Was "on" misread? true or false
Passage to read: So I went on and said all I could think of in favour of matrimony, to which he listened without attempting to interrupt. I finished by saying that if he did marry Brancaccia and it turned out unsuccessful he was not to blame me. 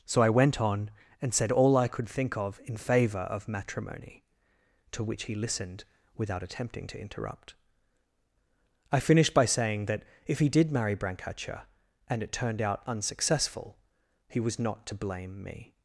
false